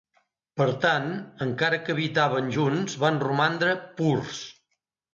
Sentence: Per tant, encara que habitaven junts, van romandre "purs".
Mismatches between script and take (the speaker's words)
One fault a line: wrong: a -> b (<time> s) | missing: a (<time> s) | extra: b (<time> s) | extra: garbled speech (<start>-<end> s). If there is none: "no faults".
no faults